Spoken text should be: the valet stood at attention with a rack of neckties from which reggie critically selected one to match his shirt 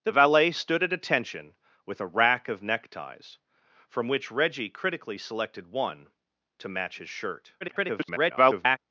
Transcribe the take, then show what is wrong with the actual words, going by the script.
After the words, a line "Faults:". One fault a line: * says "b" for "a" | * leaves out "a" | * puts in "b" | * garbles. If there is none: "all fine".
the valet stood at attention with a rack of neckties from which reggie critically selected one to match his shirt [garbled]
Faults:
* garbles